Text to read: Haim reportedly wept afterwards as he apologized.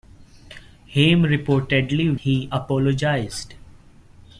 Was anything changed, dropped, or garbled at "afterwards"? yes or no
yes